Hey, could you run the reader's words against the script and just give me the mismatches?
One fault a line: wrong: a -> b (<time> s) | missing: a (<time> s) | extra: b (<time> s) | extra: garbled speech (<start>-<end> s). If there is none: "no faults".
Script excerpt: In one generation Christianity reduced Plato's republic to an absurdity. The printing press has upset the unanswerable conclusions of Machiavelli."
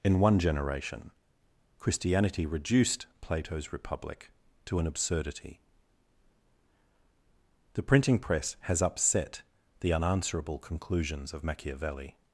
no faults